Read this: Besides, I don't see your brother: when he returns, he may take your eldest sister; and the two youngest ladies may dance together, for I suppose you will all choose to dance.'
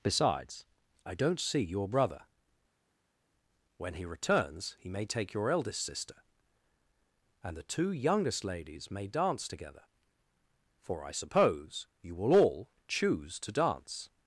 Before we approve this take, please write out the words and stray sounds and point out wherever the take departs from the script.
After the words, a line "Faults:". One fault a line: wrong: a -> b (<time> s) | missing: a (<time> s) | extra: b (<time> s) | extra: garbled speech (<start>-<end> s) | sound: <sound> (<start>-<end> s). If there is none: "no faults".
Besides, I don't see your brother: when he returns, he may take your eldest sister; and the two youngest ladies may dance together, for I suppose you will all choose to dance.'
Faults:
no faults